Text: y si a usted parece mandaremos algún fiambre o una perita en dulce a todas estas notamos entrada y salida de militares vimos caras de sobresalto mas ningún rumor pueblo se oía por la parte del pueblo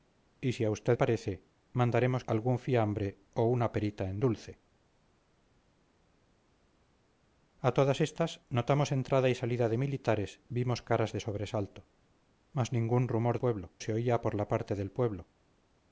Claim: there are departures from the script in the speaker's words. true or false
false